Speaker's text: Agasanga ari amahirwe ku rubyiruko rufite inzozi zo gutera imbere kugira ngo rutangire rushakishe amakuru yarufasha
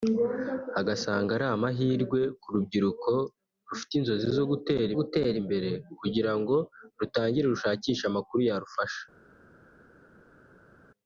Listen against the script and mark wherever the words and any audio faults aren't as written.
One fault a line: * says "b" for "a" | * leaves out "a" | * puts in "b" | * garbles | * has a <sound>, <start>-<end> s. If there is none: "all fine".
* puts in "gutera"